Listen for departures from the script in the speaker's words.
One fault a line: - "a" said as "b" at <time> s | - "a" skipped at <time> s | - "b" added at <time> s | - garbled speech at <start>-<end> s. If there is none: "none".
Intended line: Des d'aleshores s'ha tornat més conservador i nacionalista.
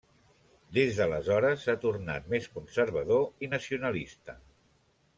none